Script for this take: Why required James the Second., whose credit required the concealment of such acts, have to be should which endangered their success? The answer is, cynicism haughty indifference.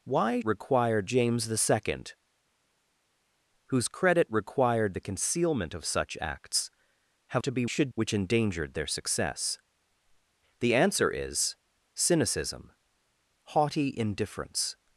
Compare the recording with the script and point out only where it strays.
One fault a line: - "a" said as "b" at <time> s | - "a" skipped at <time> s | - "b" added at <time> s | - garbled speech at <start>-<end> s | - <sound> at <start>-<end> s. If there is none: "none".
none